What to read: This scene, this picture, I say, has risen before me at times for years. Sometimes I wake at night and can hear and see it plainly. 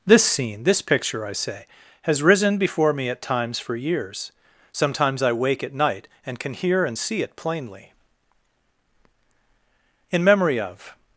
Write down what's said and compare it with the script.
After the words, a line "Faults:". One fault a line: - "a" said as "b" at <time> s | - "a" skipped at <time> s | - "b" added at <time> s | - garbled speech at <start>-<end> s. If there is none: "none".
This scene, this picture, I say, has risen before me at times for years. Sometimes I wake at night and can hear and see it plainly. IN MEMORY OF
Faults:
- "IN MEMORY OF" added at 10.1 s